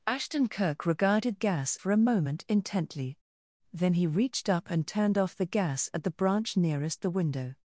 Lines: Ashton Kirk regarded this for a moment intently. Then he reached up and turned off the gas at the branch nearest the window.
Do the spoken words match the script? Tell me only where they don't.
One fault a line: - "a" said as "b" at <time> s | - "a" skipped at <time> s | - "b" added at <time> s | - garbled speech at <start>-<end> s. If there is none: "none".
- "this" said as "gas" at 1.3 s